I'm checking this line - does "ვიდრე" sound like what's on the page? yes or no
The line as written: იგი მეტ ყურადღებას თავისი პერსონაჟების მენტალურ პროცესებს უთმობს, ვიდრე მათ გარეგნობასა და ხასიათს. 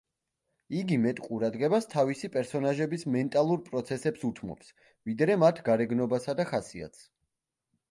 yes